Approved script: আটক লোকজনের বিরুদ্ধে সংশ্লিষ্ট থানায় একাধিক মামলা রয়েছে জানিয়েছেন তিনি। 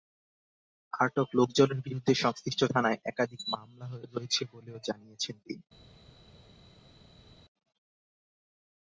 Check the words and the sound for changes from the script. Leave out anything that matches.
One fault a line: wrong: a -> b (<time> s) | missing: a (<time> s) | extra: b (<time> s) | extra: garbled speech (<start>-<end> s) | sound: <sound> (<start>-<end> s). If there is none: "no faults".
extra: বলেও (4.5 s)